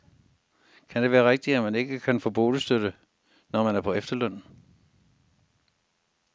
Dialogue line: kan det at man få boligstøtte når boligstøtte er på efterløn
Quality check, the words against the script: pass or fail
fail